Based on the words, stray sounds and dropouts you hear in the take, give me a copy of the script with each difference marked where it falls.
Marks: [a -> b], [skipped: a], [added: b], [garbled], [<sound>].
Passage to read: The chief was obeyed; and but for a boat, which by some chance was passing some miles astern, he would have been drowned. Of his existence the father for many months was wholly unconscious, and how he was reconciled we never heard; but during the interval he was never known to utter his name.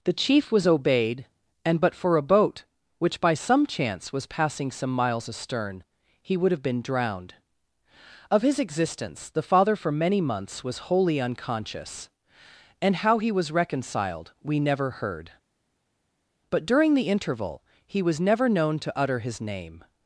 The chief was obeyed; and but for a boat, which by some chance was passing some miles astern, he would have been drowned. Of his existence the father for many months was wholly unconscious, and how he was reconciled we never heard; but during the interval he was never known to utter his name.